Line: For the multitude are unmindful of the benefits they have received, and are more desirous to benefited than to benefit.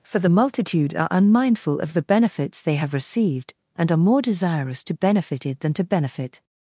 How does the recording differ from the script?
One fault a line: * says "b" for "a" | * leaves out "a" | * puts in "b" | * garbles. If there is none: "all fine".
all fine